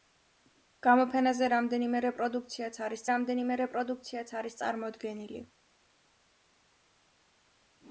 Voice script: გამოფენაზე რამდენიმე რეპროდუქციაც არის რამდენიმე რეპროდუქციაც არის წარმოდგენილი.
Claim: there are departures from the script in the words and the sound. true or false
false